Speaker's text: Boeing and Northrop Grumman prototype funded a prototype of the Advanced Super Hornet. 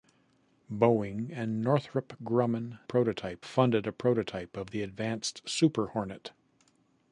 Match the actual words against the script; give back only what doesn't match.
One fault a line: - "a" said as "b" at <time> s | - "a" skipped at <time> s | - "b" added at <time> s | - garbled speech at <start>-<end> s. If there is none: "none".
none